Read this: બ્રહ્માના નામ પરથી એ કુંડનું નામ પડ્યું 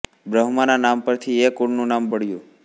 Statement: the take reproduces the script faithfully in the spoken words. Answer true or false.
true